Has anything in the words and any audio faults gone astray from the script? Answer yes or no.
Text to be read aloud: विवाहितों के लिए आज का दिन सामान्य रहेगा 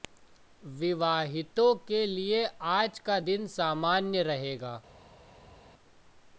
no